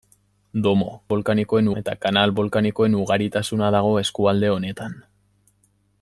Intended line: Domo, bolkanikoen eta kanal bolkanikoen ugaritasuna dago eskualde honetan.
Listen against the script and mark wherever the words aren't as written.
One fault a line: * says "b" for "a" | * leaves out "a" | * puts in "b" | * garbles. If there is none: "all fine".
all fine